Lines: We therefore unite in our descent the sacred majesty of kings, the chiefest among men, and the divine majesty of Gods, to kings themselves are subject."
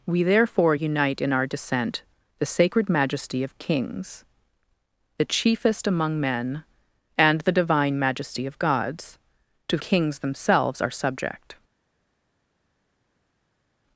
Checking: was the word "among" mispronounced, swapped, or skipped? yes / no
no